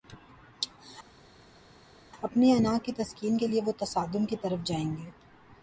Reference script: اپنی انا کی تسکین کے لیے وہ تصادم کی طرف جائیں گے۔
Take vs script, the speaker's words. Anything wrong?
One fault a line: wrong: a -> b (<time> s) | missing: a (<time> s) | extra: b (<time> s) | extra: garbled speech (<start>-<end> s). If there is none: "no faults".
no faults